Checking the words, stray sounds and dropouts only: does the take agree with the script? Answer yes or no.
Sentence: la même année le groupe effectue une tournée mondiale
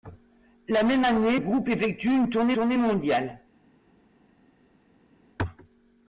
no